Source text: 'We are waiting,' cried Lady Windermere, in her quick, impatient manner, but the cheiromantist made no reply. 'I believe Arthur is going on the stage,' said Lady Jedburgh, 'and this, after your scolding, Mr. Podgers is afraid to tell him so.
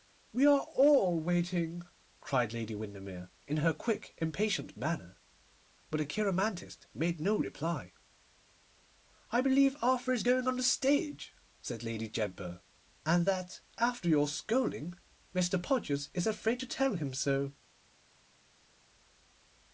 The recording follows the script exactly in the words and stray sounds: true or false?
false